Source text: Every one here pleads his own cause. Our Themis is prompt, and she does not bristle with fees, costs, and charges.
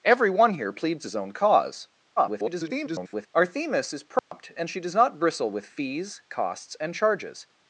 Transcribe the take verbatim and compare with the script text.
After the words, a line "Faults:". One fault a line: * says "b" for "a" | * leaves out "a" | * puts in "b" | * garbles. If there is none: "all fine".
Every one here pleads his own cause. [garbled] Our Themis is prompt, and she does not bristle with fees, costs, and charges.
Faults:
* garbles